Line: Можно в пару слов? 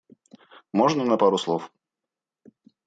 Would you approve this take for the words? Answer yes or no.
no